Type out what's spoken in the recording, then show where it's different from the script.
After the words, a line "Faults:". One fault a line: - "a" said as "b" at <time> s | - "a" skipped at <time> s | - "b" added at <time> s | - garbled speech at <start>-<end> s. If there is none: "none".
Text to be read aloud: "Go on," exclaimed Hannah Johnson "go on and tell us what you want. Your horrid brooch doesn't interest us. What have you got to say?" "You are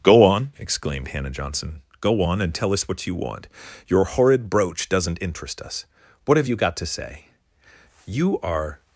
"Go on," exclaimed Hannah Johnson "go on and tell us what you want. Your horrid brooch doesn't interest us. What have you got to say?" "You are
Faults:
none